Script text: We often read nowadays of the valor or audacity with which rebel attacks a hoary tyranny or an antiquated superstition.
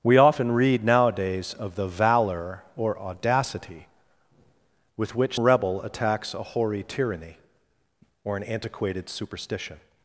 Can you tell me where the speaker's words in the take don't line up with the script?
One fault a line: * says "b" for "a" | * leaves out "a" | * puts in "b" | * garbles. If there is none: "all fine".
all fine